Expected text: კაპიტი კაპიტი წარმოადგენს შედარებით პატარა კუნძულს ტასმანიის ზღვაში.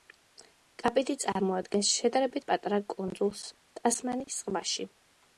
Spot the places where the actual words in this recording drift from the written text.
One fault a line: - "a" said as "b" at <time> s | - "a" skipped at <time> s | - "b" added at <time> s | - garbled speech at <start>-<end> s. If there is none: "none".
- "კაპიტი" skipped at 1.1 s